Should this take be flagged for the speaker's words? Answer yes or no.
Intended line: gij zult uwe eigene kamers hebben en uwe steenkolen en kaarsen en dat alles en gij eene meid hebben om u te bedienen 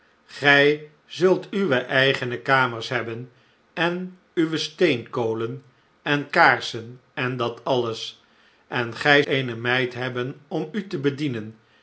no